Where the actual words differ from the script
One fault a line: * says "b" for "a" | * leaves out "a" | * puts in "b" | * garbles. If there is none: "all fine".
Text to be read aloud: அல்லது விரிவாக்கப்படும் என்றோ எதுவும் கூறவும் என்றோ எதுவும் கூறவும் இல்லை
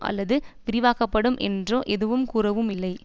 * leaves out "என்றோ எதுவும் கூறவும்"